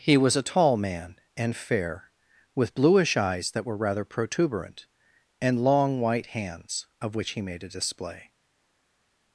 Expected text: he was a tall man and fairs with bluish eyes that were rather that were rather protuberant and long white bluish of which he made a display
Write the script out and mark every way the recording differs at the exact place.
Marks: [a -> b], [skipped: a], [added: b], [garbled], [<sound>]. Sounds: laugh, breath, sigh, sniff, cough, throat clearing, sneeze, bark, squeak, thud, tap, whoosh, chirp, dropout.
he was a tall man and [fairs -> fair] with bluish eyes that were rather [skipped: that were rather] protuberant and long white [bluish -> hands] of which he made a display